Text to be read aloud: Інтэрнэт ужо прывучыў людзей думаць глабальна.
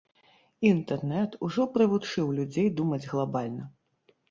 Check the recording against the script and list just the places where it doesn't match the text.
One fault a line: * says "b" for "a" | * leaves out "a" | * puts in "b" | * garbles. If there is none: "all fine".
all fine